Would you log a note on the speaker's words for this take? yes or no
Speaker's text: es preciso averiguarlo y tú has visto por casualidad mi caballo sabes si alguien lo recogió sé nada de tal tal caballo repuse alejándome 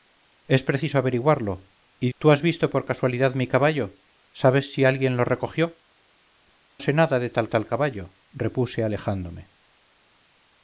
no